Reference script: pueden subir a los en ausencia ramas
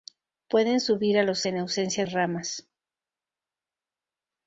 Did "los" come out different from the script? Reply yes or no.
no